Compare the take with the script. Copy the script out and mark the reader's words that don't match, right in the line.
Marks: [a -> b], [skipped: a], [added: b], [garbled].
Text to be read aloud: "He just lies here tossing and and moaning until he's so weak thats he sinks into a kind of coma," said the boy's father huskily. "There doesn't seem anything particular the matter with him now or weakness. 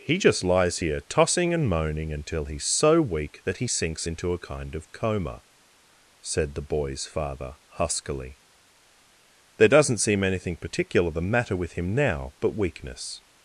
"He just lies here tossing and [skipped: and] moaning until he's so weak [thats -> that] he sinks into a kind of coma," said the boy's father huskily. "There doesn't seem anything particular the matter with him now [or -> but] weakness.